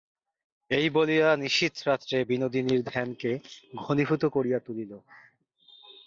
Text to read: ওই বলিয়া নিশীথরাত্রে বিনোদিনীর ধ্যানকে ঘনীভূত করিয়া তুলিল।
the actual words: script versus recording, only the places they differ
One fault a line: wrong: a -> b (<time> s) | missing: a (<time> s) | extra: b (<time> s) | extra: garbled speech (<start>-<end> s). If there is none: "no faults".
wrong: ওই -> এই (0.7 s)